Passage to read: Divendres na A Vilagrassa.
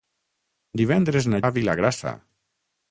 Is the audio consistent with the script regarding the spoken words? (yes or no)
yes